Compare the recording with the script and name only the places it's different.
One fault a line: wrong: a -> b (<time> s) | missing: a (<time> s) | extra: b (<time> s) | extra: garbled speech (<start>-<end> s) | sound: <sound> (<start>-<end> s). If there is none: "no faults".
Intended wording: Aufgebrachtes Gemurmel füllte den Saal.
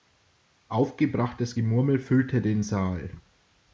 no faults